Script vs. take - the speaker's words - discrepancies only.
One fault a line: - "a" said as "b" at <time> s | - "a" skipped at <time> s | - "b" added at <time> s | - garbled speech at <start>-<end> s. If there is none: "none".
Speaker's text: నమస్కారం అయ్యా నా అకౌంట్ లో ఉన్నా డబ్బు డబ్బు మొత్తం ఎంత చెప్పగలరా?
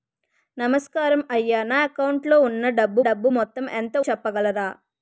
none